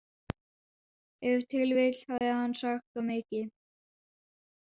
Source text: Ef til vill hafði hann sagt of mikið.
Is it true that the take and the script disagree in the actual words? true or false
false